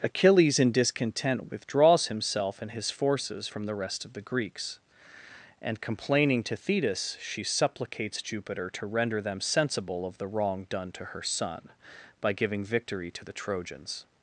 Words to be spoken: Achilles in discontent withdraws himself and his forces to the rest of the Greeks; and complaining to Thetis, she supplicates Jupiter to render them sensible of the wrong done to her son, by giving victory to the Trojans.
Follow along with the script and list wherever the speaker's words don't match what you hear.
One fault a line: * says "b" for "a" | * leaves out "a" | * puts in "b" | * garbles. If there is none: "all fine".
* says "from" for "to"